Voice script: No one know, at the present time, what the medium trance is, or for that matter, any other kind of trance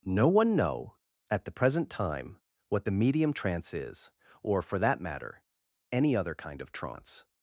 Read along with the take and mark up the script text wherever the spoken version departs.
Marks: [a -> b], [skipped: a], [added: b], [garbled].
No one know, at the present time, what the medium trance is, or for that matter, any other kind of trance